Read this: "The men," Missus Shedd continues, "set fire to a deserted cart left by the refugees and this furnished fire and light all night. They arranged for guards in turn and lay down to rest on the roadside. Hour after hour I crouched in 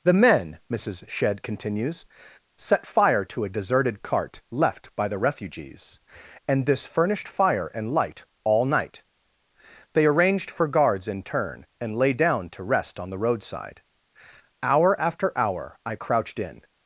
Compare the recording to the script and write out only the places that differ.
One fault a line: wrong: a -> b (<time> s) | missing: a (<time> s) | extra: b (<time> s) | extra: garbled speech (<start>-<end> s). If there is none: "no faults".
no faults